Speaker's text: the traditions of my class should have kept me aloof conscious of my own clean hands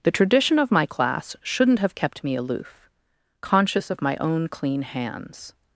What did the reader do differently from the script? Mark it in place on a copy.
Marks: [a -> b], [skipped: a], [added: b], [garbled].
the [traditions -> tradition] of my class [should -> shouldn't] have kept me aloof conscious of my own clean hands